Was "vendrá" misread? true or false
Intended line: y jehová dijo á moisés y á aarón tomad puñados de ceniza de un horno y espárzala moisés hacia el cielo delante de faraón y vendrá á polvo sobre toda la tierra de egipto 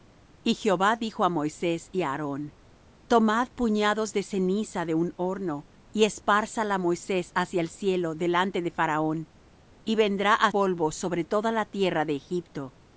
false